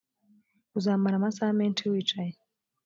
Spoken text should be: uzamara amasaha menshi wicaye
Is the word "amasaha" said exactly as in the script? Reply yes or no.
yes